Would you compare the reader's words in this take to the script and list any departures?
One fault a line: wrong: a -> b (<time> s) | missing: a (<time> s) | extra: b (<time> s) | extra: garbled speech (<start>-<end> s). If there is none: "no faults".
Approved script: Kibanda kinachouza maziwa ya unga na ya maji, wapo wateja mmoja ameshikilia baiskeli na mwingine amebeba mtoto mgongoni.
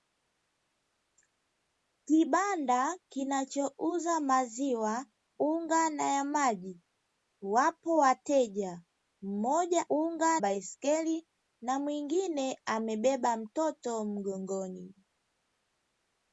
missing: ya (5.0 s)
wrong: ameshikilia -> unga (9.9 s)